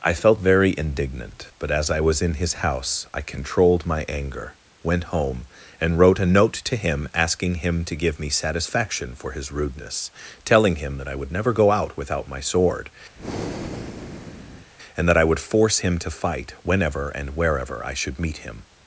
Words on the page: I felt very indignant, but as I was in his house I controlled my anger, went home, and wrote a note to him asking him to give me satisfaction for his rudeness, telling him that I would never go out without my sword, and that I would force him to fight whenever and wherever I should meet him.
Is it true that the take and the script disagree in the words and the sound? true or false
true